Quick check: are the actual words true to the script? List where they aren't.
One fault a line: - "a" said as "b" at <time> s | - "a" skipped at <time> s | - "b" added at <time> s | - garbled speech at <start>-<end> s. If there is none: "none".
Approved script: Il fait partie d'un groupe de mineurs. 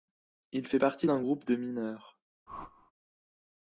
none